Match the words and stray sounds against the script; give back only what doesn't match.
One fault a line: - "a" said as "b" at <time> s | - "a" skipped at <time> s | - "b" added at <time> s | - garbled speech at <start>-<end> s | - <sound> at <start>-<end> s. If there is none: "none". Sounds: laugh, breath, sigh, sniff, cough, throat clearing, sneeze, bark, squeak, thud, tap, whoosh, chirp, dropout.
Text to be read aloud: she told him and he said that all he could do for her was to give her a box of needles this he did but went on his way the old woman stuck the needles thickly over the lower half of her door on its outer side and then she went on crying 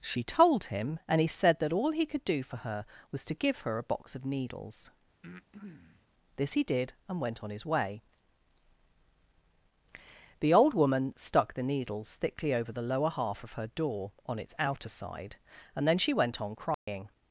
- breath at 5.2-6.1 s
- "but" said as "and" at 7.1 s
- dropout at 16.7-16.9 s